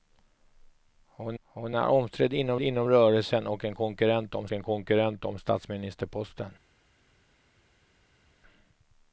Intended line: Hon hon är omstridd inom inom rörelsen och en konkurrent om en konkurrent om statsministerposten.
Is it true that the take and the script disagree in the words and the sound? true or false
false